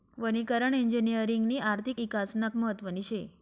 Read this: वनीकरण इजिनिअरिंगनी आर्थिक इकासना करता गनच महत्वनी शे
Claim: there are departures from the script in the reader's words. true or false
true